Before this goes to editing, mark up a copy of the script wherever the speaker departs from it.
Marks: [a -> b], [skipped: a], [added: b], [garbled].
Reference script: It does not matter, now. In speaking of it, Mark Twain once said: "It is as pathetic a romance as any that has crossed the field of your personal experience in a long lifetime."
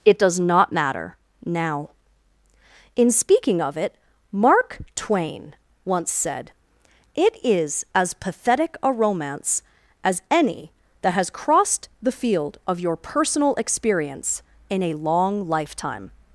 It does not matter, now. In speaking of it, Mark Twain once said: "It is as pathetic a romance as any that has crossed the field of your personal experience in a long lifetime."